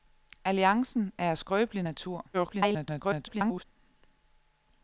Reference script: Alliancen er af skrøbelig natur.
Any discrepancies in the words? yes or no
yes